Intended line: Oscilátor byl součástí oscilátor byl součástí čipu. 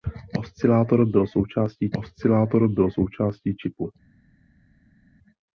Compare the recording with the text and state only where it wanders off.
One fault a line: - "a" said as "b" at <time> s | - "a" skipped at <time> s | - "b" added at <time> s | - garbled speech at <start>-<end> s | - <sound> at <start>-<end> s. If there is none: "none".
none